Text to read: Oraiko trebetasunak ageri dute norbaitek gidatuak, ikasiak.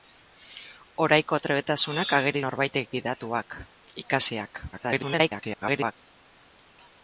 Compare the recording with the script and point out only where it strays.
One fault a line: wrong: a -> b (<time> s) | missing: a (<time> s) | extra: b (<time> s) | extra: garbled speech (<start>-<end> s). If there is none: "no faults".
missing: dute (2.4 s)
extra: garbled speech (4.7-5.9 s)